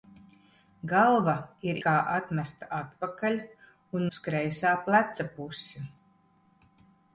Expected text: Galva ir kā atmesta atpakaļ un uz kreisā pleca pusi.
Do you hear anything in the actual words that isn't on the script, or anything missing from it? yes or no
no